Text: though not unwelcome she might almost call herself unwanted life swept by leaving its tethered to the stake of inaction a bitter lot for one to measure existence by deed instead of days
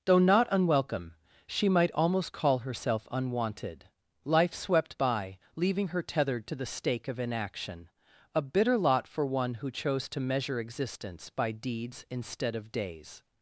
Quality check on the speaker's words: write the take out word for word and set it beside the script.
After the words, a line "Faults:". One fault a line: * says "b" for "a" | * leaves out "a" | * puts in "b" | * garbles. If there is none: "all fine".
though not unwelcome she might almost call herself unwanted life swept by leaving her tethered to the stake of inaction a bitter lot for one who chose to measure existence by deeds instead of days
Faults:
* says "her" for "its"
* puts in "who chose"
* says "deeds" for "deed"